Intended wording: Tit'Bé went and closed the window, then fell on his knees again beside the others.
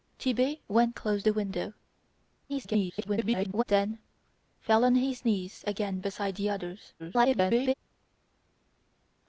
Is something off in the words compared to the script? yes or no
yes